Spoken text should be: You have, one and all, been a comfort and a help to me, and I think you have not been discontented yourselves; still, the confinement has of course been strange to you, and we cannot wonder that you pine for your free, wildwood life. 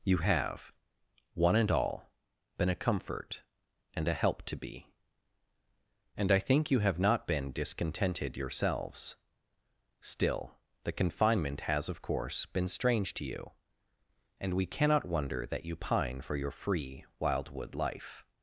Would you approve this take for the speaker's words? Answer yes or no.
no